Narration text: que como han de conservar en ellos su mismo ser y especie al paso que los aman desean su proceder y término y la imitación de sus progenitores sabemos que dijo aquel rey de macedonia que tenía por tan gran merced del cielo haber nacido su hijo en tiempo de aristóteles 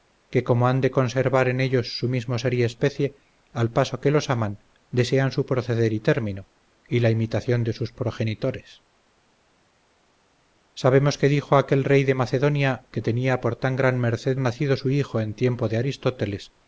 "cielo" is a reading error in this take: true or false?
true